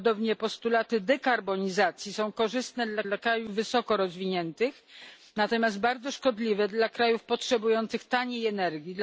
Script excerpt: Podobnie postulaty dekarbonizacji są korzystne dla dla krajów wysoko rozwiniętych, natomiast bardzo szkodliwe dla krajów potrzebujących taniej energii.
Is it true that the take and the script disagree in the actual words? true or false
false